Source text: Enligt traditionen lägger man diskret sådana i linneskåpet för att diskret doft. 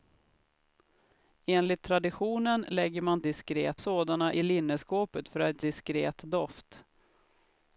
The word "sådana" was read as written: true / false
true